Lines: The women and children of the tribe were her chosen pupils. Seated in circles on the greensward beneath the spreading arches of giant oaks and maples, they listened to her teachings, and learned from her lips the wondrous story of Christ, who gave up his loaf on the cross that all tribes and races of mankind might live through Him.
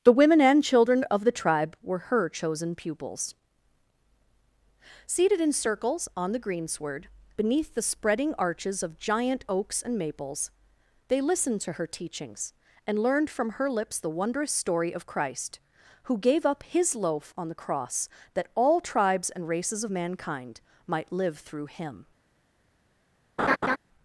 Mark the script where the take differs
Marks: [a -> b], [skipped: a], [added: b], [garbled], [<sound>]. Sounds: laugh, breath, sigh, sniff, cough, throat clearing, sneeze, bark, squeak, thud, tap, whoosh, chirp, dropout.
The women and children of the tribe were her chosen pupils. Seated in circles on the greensward beneath the spreading arches of giant oaks and maples, they listened to her teachings, and learned from her lips the wondrous story of Christ, who gave up his loaf on the cross that all tribes and races of mankind might live through Him. [laugh]